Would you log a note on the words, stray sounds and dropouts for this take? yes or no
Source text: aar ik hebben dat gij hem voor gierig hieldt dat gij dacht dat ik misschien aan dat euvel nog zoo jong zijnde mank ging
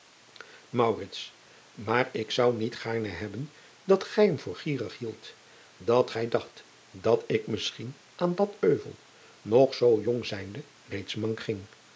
yes